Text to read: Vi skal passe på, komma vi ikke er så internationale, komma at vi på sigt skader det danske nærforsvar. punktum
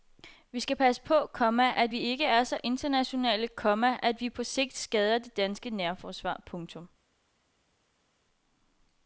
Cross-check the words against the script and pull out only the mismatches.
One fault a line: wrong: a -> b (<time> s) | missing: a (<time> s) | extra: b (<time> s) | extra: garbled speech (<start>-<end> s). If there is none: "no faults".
extra: at (1.8 s)